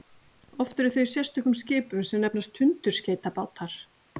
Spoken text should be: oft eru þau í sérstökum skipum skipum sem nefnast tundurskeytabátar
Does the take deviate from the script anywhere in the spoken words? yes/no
yes